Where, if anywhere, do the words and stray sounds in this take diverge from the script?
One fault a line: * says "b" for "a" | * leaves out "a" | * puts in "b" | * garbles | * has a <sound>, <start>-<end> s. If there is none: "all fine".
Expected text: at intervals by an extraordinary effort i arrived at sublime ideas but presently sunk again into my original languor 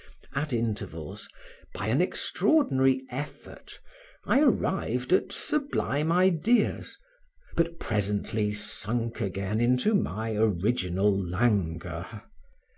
all fine